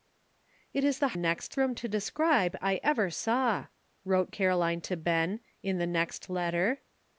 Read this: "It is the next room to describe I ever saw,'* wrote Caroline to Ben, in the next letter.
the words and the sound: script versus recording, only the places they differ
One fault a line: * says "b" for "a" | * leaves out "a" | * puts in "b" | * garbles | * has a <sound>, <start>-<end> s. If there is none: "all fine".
all fine